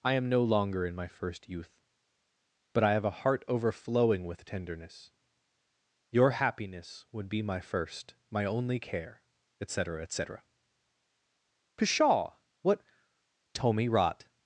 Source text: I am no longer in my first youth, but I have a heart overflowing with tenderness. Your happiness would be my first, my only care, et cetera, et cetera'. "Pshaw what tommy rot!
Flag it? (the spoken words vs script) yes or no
no